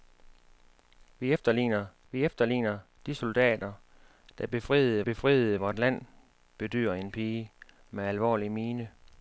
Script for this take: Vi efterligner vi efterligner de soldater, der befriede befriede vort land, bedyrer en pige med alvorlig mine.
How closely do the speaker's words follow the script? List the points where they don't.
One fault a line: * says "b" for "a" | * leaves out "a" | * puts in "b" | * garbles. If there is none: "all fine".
all fine